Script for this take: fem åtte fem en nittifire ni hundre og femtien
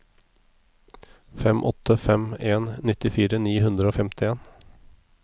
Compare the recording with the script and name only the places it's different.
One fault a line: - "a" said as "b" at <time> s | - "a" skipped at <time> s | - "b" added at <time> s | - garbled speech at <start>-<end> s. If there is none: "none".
none